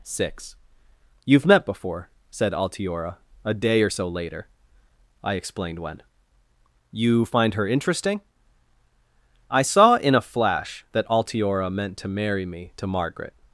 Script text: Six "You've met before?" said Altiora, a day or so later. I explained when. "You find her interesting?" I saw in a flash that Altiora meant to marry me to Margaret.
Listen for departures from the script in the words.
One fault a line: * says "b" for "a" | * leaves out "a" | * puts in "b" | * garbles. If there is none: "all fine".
all fine